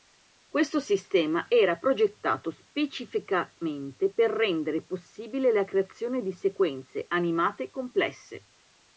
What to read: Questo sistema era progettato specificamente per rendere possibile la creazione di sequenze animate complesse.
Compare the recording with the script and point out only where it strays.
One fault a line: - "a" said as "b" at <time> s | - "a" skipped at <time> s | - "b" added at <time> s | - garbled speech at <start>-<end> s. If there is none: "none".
none